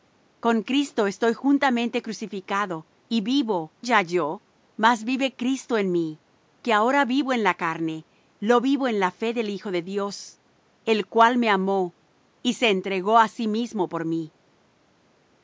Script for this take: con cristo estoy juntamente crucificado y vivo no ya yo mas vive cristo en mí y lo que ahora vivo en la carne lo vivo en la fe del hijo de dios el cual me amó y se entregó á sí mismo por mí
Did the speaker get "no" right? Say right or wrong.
wrong